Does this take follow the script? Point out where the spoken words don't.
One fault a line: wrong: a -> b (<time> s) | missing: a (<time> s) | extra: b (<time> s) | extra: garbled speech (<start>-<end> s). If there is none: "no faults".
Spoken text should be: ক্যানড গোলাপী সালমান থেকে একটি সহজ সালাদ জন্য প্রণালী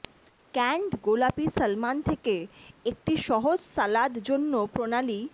no faults